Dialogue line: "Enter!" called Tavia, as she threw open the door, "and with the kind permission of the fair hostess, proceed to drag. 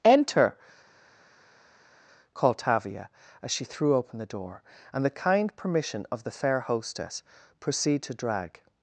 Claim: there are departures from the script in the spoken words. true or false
true